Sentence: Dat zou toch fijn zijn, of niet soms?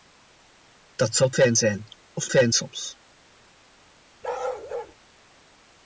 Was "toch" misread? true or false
true